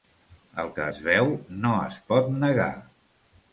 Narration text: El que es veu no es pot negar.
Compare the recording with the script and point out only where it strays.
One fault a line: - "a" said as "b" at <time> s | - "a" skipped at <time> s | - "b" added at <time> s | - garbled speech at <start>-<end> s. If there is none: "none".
none